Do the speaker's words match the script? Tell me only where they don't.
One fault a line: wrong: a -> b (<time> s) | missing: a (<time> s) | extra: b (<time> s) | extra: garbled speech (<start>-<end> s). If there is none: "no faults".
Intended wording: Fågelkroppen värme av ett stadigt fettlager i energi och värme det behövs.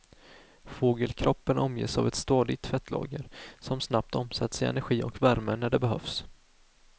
wrong: värme -> omges (1.6 s)
extra: som snabbt omsätts (3.6 s)
extra: när (5.6 s)